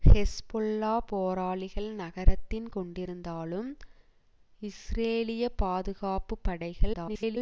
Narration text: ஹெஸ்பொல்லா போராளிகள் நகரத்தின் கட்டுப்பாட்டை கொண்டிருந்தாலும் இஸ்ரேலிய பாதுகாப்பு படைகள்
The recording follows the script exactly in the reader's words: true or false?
false